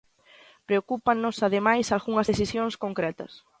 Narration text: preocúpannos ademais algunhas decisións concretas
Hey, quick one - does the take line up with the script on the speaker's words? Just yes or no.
yes